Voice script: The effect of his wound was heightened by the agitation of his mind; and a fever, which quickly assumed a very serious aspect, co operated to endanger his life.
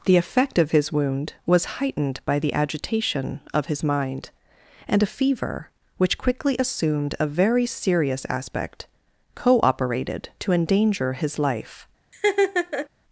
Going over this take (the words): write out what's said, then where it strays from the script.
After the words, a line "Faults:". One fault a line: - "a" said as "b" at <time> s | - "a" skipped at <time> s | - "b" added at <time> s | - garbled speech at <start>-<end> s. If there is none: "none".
The effect of his wound was heightened by the agitation of his mind; and a fever, which quickly assumed a very serious aspect, co operated to endanger his life.
Faults:
none